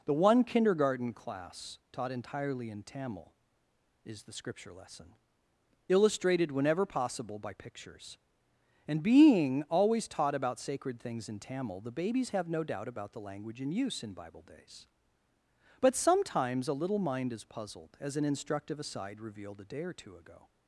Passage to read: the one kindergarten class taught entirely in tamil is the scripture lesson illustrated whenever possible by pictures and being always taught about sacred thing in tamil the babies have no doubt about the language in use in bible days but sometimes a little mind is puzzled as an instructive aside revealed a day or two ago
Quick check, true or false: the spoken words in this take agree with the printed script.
false